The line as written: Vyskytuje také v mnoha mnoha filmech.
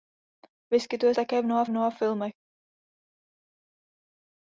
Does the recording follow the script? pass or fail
pass